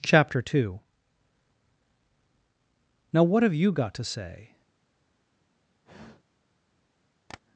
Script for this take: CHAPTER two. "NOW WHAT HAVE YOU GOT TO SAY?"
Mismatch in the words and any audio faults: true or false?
true